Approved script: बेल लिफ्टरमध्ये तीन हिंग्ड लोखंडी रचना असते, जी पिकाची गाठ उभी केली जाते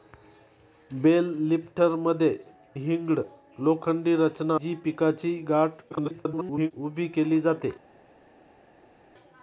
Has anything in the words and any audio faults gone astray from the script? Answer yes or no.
yes